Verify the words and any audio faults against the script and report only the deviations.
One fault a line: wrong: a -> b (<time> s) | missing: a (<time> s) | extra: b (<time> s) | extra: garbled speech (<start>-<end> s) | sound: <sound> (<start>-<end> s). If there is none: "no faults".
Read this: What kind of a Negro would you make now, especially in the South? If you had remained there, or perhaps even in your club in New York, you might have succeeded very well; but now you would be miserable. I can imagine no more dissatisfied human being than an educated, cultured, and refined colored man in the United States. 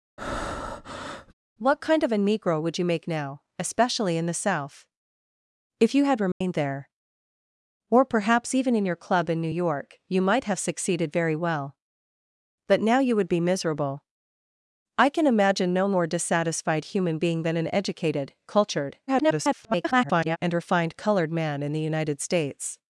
sound: breath (0.2-1.3 s)
sound: dropout (6.3-6.4 s)
extra: garbled speech (19.1-20.4 s)